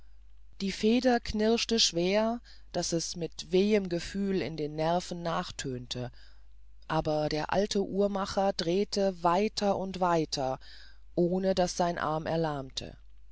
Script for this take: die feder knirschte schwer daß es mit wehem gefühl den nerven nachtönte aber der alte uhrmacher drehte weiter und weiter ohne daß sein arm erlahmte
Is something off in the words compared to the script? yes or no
yes